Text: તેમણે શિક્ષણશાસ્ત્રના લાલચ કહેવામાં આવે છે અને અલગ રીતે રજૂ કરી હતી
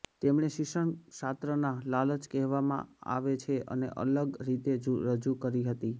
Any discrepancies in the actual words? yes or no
no